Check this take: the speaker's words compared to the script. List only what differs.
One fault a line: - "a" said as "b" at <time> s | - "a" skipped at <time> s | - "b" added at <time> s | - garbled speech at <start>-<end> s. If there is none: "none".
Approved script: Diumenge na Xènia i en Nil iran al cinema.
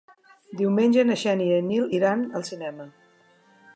none